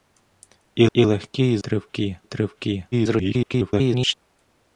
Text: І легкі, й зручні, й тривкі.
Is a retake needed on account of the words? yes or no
yes